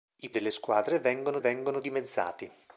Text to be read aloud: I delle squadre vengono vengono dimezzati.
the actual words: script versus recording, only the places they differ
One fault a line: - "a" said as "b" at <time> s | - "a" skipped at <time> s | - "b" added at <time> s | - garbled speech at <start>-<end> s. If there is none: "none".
none